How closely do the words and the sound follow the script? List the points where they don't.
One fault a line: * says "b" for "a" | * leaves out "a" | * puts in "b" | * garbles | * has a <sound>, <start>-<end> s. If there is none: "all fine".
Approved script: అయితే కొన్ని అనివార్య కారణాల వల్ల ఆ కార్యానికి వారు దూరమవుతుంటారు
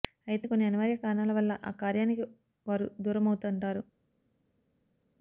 all fine